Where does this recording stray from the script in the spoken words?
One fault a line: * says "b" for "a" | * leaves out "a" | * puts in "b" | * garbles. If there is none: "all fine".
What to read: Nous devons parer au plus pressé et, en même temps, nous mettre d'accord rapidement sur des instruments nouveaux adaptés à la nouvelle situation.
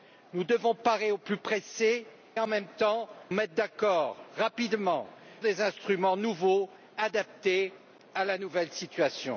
* leaves out "et"
* leaves out "nous"
* leaves out "sur"